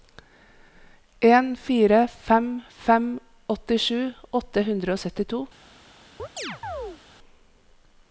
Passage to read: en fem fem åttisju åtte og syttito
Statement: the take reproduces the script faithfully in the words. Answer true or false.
false